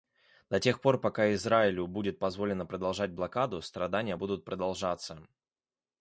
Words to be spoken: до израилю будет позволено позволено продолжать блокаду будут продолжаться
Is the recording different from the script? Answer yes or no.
yes